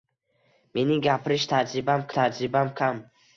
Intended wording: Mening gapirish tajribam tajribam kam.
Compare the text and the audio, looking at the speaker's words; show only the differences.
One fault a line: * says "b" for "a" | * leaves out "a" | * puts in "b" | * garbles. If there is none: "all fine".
all fine